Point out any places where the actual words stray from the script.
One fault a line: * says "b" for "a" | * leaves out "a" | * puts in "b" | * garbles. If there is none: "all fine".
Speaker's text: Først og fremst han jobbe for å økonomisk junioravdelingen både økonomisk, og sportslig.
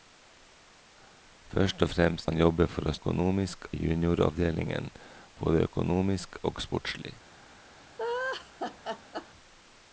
all fine